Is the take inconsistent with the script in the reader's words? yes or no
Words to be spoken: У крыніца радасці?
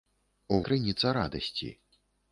no